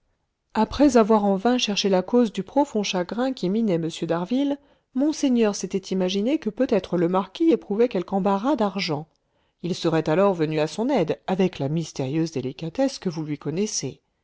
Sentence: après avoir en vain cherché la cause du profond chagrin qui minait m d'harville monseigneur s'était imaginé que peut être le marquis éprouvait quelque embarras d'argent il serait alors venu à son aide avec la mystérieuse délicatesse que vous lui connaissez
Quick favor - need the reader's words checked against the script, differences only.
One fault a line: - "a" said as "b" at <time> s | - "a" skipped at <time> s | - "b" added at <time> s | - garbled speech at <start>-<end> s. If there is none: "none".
none